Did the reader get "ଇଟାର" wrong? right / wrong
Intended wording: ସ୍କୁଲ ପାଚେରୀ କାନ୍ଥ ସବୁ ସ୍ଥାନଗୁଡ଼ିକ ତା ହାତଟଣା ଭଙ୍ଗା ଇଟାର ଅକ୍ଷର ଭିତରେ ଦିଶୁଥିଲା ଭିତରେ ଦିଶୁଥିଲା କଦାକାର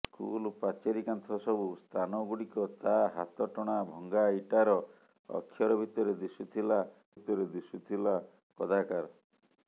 right